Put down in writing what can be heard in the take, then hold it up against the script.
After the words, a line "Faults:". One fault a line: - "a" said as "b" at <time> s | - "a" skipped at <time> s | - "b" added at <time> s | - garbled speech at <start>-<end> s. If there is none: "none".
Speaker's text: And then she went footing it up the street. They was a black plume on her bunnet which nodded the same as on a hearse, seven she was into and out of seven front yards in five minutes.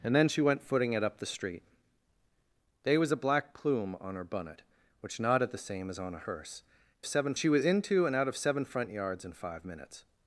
And then she went footing it up the street. They was a black plume on her bunnet which nodded the same as on a hearse, seven she was into and out of seven front yards in five minutes.
Faults:
none